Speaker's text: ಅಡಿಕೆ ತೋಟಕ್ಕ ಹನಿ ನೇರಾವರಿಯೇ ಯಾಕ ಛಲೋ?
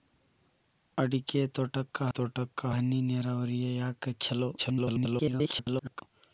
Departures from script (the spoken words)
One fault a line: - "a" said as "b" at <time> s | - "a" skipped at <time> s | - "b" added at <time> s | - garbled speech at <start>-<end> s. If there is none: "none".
- "ತೋಟಕ್ಕ" added at 2.1 s
- garbled speech at 4.6-6.0 s